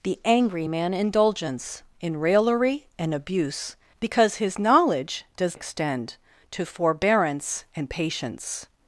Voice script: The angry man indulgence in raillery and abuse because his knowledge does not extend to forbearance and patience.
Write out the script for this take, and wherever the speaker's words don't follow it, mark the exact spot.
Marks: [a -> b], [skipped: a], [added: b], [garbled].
The angry man indulgence in raillery and abuse because his knowledge does [skipped: not] extend to forbearance and patience.